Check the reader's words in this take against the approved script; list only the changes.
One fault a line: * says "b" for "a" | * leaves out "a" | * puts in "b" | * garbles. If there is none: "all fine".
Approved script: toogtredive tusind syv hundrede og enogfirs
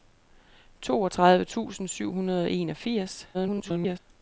* garbles